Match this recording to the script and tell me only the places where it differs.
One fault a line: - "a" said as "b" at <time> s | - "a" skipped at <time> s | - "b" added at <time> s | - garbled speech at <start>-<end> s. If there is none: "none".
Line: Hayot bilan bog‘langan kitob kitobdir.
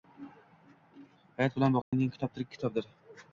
- "tirik" added at 2.4 s